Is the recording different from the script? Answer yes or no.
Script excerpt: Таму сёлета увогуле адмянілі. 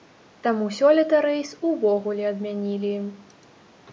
yes